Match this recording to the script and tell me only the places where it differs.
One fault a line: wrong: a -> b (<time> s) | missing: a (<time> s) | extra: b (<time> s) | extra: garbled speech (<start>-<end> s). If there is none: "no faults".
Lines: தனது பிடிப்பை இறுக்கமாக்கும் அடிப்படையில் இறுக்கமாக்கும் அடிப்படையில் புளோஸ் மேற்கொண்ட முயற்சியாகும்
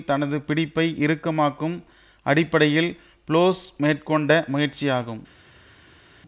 missing: இறுக்கமாக்கும் அடிப்படையில் (2.9 s)